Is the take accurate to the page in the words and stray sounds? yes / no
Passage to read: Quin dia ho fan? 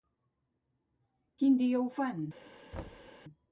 no